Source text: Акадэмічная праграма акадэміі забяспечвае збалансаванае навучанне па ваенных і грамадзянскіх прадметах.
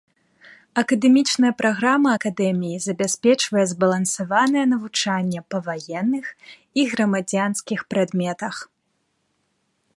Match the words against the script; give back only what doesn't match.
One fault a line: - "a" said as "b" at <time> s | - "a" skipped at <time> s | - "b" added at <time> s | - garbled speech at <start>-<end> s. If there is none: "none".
none